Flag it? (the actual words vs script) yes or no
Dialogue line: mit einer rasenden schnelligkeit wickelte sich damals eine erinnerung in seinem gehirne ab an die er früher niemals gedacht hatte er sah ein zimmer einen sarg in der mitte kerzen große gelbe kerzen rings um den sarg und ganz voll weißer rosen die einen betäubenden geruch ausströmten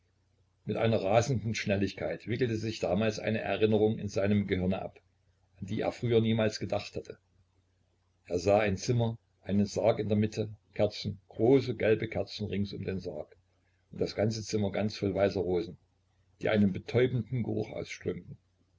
yes